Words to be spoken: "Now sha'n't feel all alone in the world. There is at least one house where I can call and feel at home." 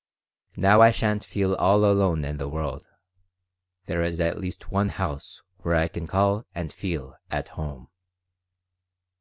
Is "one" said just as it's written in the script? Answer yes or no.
yes